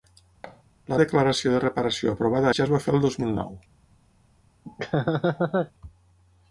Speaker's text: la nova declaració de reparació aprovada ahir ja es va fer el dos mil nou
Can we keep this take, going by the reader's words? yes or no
no